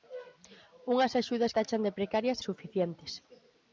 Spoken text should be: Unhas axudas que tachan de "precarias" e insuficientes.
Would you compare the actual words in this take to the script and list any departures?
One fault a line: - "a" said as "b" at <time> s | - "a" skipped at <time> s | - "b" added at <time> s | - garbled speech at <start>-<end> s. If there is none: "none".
- "que" skipped at 1.6 s
- "e" skipped at 2.4 s